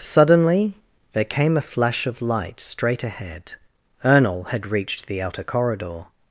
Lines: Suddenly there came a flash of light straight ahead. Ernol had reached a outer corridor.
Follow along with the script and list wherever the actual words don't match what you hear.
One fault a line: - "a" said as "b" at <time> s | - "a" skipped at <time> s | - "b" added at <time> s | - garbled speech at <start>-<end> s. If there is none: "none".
- "a" said as "the" at 5.0 s